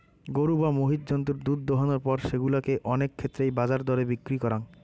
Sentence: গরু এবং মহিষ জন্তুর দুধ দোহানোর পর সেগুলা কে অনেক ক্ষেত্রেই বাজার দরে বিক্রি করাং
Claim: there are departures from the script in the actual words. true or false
true